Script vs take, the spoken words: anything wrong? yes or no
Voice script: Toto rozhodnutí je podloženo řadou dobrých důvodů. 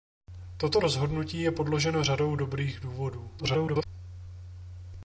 yes